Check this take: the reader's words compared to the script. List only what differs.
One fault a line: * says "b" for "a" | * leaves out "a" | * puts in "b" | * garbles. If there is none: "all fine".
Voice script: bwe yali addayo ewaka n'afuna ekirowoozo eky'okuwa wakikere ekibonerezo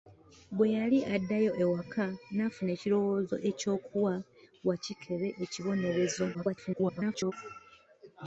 * garbles